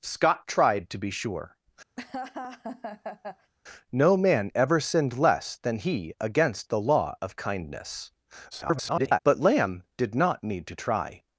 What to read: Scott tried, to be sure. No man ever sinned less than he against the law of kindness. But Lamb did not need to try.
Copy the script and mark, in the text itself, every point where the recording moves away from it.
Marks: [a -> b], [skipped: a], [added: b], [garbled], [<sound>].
Scott tried, to be sure. [laugh] No man ever sinned less than he against the law of kindness. [garbled] But Lamb did not need to try.